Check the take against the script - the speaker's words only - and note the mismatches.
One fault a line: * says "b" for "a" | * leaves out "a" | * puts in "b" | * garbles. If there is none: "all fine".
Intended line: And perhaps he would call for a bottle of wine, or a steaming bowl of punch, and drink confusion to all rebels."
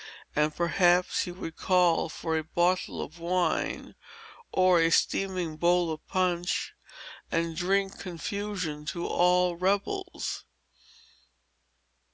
all fine